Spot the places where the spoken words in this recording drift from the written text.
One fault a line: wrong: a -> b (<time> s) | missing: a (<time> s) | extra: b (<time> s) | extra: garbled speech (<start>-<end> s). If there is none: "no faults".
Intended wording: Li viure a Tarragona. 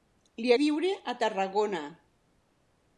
no faults